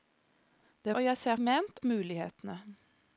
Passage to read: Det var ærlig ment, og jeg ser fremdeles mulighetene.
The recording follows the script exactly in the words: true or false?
false